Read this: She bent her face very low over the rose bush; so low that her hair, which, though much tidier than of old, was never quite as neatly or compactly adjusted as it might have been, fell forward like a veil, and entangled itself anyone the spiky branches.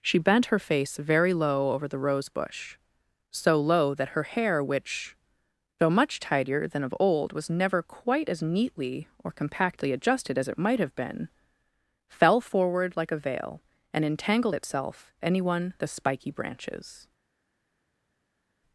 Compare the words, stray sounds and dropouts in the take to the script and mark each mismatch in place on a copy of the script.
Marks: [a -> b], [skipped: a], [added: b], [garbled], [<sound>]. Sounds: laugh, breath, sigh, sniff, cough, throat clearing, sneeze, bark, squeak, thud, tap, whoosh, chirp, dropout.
She bent her face very low over the rose bush; so low that her hair, which, though much tidier than of old, was never quite as neatly or compactly adjusted as it might have been, fell forward like a veil, and entangled itself anyone the spiky branches.